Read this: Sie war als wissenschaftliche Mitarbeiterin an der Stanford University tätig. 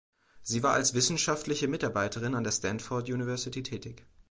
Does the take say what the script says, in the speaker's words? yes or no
yes